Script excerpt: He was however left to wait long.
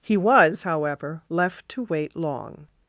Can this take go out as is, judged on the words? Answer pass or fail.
pass